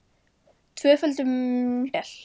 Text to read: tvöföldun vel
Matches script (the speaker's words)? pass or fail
pass